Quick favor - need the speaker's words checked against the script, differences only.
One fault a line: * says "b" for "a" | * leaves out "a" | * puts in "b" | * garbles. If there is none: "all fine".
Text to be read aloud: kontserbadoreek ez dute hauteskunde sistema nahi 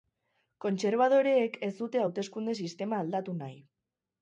* puts in "aldatu"